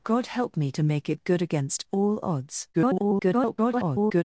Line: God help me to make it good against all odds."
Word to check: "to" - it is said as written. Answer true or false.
true